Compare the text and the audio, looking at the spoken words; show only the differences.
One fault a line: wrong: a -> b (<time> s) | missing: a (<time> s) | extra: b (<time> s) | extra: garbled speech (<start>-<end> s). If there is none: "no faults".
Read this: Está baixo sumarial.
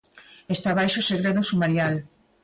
extra: segredo (1.1 s)